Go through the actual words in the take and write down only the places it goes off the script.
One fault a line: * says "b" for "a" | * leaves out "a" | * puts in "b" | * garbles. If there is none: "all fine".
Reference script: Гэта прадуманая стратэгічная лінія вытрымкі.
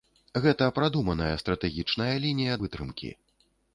all fine